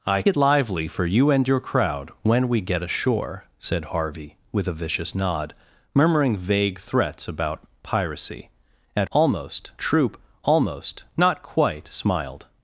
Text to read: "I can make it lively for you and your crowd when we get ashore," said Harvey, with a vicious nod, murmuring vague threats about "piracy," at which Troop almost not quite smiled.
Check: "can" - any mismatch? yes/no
yes